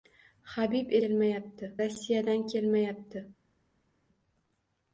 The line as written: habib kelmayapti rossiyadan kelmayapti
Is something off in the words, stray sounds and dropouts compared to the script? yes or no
no